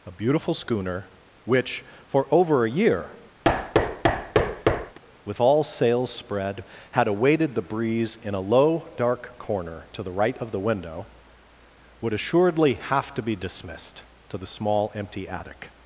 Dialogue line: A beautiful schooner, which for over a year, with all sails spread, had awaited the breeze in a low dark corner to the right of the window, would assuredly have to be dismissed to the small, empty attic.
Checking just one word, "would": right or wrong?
right